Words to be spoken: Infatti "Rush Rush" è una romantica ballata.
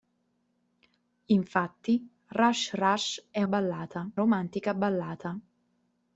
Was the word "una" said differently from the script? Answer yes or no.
yes